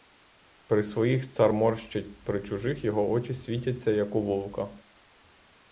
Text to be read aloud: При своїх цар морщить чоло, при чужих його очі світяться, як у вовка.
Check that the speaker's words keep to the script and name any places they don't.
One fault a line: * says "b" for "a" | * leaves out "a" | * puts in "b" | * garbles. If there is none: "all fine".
* leaves out "чоло"